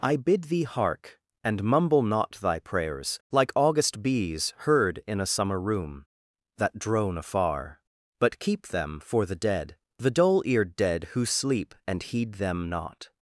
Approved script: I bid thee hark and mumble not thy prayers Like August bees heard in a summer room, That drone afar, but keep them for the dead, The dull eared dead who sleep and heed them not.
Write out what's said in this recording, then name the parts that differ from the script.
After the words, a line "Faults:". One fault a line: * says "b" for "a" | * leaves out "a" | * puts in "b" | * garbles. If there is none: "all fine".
I bid thee hark and mumble not thy prayers Like August bees heard in a summer room, That drone afar, but keep them for the dead, The dull eared dead who sleep and heed them not.
Faults:
all fine